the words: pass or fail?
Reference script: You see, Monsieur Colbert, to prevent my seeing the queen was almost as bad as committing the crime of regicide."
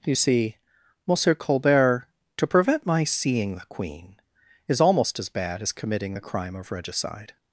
fail